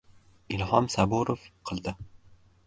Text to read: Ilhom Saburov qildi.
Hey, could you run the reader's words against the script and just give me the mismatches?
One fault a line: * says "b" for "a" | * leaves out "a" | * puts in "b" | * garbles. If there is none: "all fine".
all fine